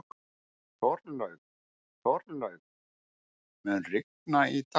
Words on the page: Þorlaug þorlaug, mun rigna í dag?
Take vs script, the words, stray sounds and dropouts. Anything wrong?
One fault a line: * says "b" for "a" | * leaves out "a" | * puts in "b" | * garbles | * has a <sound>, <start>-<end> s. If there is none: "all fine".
all fine